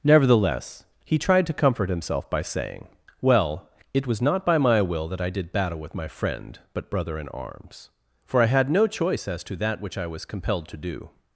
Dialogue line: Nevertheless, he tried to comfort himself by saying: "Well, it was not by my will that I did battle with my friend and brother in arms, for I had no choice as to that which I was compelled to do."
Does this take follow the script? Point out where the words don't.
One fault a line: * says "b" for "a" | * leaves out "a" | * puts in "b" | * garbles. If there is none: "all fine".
* says "but" for "and"